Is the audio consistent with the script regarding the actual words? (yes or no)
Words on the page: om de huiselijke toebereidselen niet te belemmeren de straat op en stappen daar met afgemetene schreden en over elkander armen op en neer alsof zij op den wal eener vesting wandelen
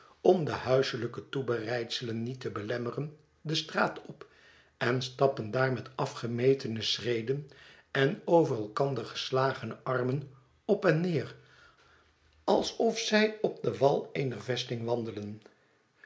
no